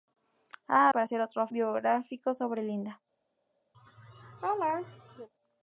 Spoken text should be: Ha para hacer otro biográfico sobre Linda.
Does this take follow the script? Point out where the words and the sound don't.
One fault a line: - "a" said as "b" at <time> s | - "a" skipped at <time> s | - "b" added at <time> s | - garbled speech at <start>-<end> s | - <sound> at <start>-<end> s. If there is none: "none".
- laugh at 3.7-5.3 s